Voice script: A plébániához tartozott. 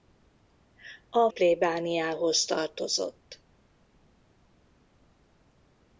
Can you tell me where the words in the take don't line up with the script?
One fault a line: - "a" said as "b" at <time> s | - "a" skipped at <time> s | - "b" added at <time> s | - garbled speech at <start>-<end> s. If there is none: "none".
none